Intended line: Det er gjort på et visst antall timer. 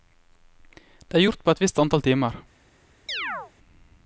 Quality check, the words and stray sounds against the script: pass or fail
fail